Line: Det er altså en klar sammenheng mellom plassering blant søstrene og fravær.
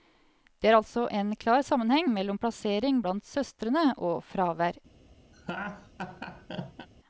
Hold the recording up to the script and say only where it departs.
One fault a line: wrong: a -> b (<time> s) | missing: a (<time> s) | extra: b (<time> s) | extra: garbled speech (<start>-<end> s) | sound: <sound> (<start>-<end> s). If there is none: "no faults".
sound: laugh (5.3-6.9 s)